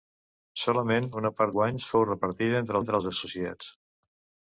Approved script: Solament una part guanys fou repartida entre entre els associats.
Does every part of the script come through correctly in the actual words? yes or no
yes